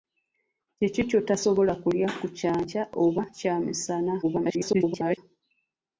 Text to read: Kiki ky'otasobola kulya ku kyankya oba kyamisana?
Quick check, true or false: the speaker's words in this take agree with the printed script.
false